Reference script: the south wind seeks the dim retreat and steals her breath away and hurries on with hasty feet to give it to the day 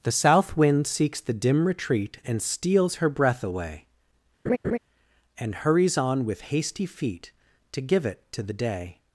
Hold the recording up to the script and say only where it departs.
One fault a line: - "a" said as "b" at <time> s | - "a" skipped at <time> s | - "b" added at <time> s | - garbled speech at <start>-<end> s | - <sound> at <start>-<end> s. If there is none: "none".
- laugh at 4.5-4.8 s